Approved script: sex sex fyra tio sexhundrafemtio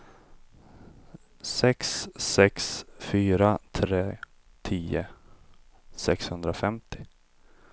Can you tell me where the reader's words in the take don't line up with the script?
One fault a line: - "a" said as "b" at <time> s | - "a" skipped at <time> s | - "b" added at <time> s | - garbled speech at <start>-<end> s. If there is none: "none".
- "tre" added at 3.7 s